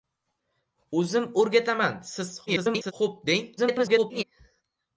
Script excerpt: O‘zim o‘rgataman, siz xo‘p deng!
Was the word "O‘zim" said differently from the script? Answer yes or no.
no